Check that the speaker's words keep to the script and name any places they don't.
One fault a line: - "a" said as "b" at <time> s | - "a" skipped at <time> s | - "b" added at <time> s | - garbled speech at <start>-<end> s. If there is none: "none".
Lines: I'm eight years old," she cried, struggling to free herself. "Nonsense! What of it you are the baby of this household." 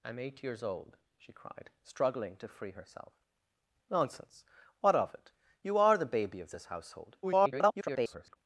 - garbled speech at 7.2-8.4 s